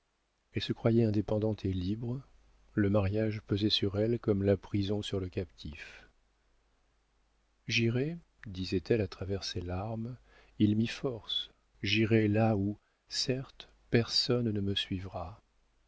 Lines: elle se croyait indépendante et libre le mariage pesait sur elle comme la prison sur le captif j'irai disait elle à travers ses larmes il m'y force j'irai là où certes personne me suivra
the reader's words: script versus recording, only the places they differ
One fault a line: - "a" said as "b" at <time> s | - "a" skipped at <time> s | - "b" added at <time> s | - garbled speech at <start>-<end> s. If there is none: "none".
- "ne" added at 14.5 s